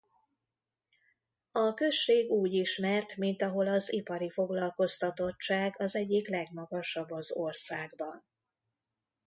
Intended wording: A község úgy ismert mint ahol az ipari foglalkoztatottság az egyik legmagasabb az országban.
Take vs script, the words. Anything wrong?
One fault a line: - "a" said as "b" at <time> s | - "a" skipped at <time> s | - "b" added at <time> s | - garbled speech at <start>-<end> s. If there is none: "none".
none